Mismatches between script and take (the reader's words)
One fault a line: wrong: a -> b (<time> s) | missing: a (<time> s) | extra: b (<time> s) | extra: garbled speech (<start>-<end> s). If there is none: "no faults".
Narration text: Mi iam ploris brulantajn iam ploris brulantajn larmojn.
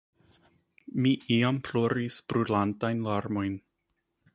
missing: iam ploris brulantajn (3.1 s)